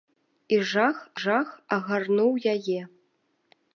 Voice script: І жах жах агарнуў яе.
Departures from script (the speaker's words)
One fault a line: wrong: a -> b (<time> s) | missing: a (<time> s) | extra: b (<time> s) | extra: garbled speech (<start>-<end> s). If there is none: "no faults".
no faults